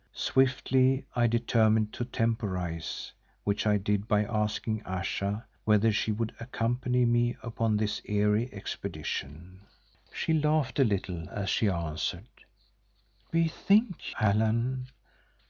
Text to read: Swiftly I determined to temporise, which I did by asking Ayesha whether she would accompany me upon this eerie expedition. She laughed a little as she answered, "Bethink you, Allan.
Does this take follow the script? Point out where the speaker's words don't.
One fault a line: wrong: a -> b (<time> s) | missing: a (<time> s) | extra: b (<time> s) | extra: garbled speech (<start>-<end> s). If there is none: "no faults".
missing: you (14.2 s)